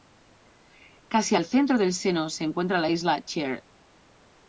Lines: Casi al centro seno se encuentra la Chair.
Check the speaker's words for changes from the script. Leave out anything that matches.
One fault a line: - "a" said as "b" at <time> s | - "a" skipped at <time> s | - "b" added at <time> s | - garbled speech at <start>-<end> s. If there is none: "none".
- "del" added at 1.8 s
- "isla" added at 2.9 s